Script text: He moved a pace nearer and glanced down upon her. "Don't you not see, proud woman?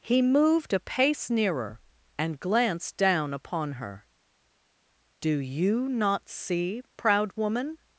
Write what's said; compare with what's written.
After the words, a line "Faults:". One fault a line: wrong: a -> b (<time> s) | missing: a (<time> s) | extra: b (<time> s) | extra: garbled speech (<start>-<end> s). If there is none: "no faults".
He moved a pace nearer and glanced down upon her. "Do you not see, proud woman?
Faults:
wrong: Don't -> Do (5.2 s)